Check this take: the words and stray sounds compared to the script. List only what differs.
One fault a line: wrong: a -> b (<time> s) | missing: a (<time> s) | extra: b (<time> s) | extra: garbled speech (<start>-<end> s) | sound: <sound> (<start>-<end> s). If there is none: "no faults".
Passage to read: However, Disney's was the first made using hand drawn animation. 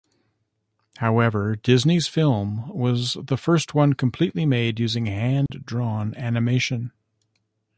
extra: film (2.1 s)
extra: one completely (3.7 s)
sound: dropout (5.5-5.5 s)